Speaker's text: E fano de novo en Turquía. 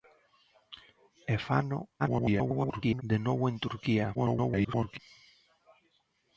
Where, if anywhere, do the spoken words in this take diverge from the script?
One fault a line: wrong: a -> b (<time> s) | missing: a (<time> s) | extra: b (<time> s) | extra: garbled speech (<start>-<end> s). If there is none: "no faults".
extra: garbled speech (2.0-3.0 s)
extra: garbled speech (4.1-5.0 s)